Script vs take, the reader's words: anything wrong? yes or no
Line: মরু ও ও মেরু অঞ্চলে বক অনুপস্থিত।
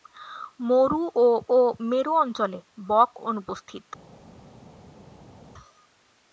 no